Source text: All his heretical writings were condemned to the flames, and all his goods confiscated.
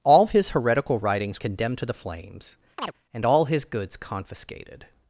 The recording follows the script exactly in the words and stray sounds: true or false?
false